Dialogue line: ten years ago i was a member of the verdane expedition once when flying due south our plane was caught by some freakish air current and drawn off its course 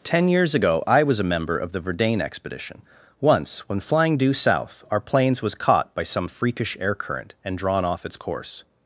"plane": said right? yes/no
no